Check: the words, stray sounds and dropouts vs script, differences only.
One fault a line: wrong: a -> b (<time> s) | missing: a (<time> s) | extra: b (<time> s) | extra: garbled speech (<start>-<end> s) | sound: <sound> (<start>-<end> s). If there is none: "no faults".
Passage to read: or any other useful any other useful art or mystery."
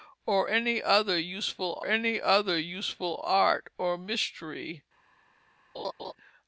sound: laugh (5.7-6.1 s)